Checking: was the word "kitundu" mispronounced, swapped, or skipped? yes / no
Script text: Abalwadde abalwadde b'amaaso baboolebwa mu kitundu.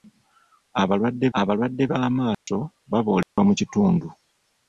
no